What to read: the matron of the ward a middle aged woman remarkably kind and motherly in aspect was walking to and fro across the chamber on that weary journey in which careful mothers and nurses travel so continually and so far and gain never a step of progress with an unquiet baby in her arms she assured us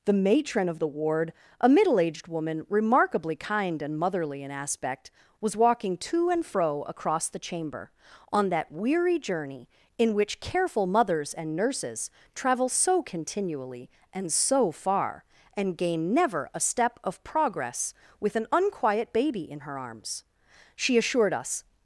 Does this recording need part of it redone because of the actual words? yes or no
no